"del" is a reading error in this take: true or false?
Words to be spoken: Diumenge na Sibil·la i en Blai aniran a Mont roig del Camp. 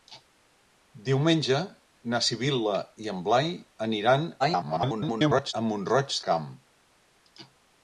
true